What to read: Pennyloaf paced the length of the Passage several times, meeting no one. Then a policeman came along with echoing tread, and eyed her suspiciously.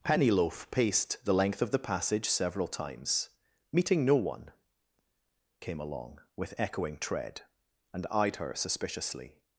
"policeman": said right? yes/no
no